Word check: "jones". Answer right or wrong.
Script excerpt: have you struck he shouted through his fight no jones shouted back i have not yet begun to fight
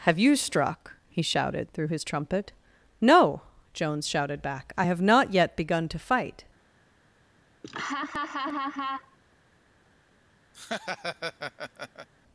right